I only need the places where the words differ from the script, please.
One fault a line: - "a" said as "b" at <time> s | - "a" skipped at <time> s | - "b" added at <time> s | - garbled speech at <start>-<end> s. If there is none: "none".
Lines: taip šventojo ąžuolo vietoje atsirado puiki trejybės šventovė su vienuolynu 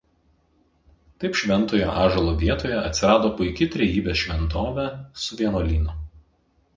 none